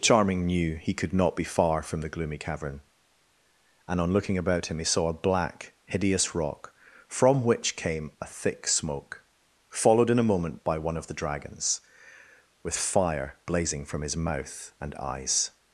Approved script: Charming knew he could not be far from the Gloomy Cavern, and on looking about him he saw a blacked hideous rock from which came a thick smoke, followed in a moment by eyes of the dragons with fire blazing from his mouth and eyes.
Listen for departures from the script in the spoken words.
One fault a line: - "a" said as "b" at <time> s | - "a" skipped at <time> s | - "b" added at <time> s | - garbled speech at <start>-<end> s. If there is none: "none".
- "blacked" said as "black" at 5.1 s
- "eyes" said as "one" at 10.8 s